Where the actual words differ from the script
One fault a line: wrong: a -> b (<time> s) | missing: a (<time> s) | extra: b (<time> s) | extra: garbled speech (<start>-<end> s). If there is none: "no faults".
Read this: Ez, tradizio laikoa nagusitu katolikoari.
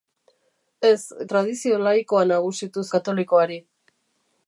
no faults